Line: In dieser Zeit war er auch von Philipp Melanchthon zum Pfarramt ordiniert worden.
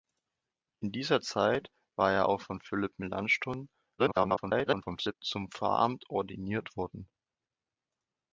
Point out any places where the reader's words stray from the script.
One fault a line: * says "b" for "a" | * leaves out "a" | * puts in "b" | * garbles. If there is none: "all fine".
* garbles